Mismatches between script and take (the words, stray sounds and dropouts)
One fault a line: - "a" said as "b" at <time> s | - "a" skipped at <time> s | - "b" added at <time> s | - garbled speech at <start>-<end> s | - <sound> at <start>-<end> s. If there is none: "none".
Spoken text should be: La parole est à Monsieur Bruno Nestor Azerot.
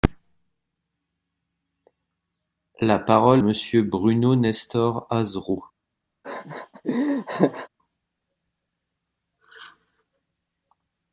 - "est à" skipped at 3.4 s
- laugh at 6.2-7.7 s